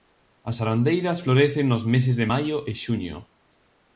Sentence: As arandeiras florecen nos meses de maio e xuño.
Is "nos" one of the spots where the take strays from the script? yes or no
no